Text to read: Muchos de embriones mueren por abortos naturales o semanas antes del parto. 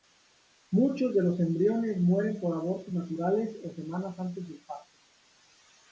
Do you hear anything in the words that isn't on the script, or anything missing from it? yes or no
yes